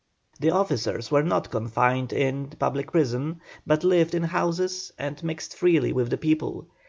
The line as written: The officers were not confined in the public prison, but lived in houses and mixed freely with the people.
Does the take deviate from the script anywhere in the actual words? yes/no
no